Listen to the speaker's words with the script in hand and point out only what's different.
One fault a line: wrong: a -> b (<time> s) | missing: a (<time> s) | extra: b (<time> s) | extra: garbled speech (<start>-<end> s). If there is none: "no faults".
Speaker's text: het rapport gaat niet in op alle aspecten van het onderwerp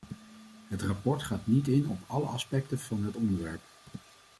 no faults